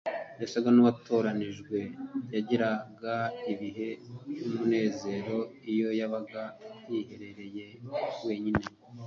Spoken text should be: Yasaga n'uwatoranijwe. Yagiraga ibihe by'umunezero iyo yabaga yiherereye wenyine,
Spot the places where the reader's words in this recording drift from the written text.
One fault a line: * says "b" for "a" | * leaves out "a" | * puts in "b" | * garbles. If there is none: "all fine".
all fine